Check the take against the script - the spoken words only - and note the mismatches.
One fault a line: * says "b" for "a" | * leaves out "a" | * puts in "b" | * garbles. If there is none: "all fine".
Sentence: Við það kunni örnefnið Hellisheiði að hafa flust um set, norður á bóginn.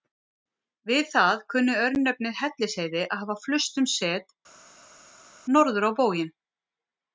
all fine